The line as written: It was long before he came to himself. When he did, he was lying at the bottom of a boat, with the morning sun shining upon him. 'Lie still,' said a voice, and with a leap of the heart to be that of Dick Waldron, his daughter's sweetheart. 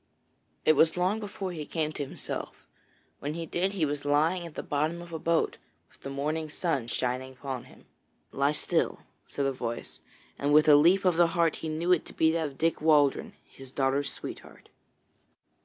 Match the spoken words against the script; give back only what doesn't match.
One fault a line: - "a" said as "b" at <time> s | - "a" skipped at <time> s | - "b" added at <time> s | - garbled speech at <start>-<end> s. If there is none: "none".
- "he knew it" added at 11.6 s